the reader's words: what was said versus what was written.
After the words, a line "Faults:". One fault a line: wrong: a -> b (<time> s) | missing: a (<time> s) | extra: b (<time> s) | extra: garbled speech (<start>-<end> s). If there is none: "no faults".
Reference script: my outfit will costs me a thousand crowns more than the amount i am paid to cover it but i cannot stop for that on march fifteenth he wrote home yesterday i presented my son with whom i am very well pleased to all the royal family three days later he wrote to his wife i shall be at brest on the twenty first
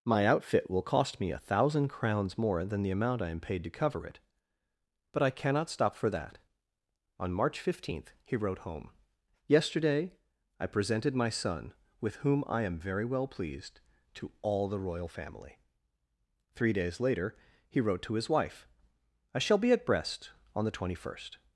my outfit will cost me a thousand crowns more than the amount i am paid to cover it but i cannot stop for that on march fifteenth he wrote home yesterday i presented my son with whom i am very well pleased to all the royal family three days later he wrote to his wife i shall be at brest on the twenty first
Faults:
wrong: costs -> cost (0.8 s)